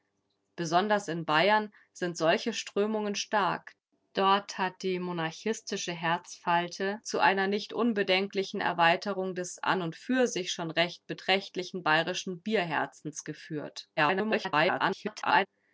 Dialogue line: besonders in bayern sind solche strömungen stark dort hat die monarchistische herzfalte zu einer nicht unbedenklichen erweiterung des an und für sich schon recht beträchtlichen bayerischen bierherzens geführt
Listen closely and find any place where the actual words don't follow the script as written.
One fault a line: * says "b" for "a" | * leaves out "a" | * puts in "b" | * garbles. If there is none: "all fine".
* garbles